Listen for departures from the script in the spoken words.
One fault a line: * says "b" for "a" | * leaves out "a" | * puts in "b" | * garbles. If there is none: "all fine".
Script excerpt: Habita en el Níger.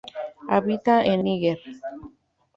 * leaves out "el"